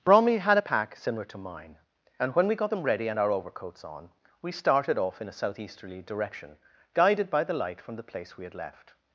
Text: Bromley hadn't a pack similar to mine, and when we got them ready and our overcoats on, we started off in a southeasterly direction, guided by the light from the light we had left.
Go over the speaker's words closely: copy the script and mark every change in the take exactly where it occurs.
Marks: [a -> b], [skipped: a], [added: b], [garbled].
Bromley [hadn't -> had] a pack similar to mine, and when we got them ready and our overcoats on, we started off in a southeasterly direction, guided by the light from the [light -> place] we had left.